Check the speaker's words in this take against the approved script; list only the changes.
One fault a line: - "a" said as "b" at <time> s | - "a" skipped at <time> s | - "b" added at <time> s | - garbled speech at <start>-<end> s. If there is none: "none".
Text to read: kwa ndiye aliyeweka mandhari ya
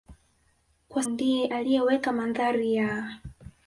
none